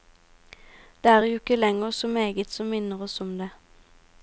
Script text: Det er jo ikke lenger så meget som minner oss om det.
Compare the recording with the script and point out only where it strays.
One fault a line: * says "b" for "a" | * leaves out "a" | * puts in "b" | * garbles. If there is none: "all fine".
all fine